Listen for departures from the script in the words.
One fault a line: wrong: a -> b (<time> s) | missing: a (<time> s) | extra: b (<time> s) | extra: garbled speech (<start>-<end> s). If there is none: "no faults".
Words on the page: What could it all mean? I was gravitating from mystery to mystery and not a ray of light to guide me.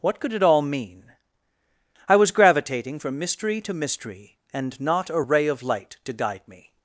no faults